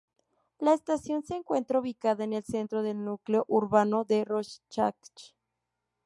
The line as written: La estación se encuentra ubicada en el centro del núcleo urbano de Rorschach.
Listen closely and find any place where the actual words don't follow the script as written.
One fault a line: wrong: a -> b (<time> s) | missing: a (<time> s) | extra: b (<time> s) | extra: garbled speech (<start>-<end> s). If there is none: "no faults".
no faults